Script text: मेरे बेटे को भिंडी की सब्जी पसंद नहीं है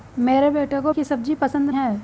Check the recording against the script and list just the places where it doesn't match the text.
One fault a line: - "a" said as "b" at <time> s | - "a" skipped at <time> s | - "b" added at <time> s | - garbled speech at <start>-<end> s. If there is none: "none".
- "भिंडी" skipped at 0.9 s
- "नहीं" skipped at 1.7 s